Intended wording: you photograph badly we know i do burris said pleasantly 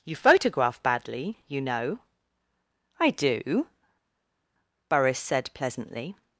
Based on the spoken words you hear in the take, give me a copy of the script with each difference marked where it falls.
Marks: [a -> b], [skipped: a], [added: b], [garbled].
you photograph badly [we -> you] know i do burris said pleasantly